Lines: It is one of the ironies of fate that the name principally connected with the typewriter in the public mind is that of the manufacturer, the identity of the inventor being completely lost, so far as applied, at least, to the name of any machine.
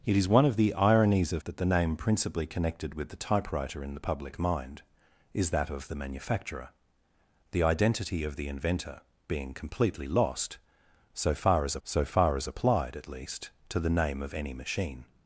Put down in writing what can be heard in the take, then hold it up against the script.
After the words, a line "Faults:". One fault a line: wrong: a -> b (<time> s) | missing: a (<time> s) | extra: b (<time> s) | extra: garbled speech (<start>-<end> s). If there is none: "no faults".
It is one of the ironies of that the name principally connected with the typewriter in the public mind is that of the manufacturer, the identity of the inventor being completely lost, so far as so far as applied, at least, to the name of any machine.
Faults:
missing: fate (1.4 s)
extra: so far as (11.8 s)